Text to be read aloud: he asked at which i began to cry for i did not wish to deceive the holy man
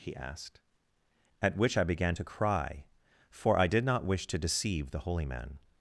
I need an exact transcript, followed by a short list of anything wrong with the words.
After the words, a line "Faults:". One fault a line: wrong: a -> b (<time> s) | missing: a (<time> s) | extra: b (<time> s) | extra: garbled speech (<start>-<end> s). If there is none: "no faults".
he asked at which i began to cry for i did not wish to deceive the holy man
Faults:
no faults